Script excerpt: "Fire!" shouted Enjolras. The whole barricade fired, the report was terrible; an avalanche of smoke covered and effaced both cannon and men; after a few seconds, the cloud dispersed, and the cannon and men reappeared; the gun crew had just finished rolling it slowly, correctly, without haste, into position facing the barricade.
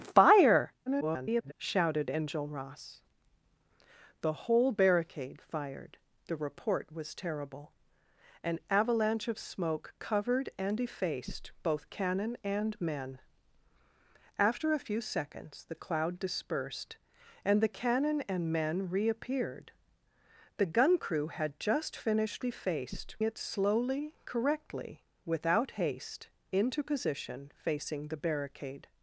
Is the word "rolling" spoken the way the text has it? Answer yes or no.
no